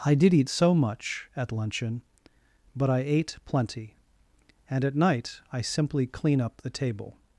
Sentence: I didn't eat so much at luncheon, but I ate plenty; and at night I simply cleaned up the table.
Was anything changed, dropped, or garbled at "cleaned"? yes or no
yes